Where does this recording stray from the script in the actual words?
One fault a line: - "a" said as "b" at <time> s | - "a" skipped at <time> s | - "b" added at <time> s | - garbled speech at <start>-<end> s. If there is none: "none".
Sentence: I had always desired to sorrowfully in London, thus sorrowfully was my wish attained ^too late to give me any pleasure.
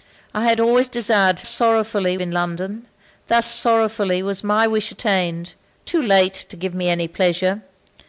none